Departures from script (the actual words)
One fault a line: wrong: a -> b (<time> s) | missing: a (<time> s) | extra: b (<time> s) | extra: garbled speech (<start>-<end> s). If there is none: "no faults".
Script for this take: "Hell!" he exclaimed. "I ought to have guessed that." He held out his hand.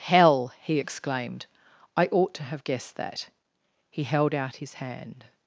no faults